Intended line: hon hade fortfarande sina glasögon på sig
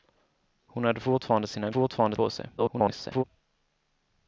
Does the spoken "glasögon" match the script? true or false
false